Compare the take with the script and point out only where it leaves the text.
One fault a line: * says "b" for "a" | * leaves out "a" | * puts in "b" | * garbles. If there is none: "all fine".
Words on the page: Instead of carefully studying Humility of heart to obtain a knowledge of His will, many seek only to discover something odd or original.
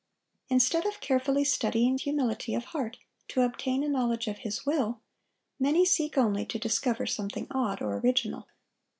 all fine